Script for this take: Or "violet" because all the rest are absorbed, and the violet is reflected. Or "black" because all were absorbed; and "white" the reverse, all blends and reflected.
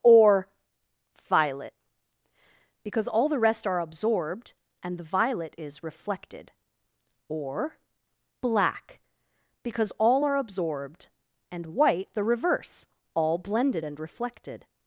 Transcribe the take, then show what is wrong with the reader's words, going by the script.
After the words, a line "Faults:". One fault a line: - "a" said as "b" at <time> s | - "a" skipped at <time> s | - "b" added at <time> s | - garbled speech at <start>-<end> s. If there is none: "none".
Or "violet" because all the rest are absorbed, and the violet is reflected. Or "black" because all are absorbed; and "white" the reverse, all blended and reflected.
Faults:
- "were" said as "are" at 10.2 s
- "blends" said as "blended" at 13.4 s